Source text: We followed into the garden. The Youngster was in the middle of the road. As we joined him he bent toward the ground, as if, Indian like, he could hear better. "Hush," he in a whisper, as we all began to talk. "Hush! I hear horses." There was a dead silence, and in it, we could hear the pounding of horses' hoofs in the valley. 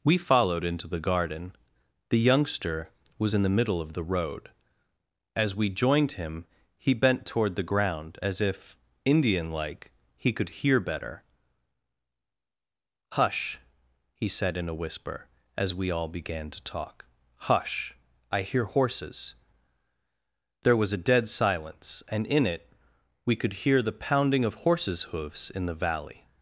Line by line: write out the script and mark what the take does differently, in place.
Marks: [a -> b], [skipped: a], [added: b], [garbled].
We followed into the garden. The Youngster was in the middle of the road. As we joined him he bent toward the ground, as if, Indian like, he could hear better. "Hush," he [added: said] in a whisper, as we all began to talk. "Hush! I hear horses." There was a dead silence, and in it, we could hear the pounding of horses' hoofs in the valley.